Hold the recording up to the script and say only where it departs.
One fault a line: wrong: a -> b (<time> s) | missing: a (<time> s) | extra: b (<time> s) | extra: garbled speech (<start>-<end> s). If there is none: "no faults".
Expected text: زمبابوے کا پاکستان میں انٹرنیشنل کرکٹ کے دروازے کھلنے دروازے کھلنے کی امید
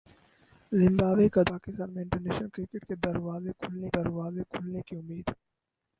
no faults